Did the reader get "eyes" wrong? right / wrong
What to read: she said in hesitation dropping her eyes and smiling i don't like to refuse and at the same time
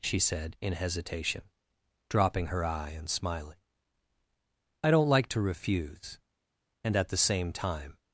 wrong